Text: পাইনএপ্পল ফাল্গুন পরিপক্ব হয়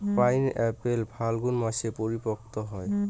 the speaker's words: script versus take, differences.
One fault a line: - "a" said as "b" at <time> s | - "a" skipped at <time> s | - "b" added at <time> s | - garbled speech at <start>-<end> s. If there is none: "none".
- "মাসে" added at 1.6 s